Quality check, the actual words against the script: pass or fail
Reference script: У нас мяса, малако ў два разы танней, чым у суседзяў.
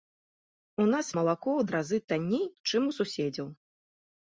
fail